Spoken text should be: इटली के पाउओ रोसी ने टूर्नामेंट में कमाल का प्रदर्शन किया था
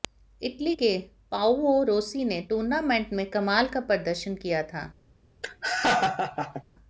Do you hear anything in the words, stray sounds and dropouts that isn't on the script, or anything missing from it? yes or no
yes